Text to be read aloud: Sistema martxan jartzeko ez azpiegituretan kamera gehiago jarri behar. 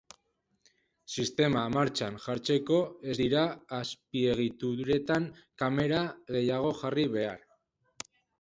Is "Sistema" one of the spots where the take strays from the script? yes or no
no